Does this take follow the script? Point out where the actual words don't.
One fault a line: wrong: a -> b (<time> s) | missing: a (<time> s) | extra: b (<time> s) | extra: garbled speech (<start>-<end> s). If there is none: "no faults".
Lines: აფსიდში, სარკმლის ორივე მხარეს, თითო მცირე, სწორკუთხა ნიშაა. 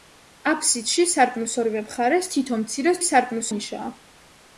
wrong: სწორკუთხა -> სარკმლის (3.1 s)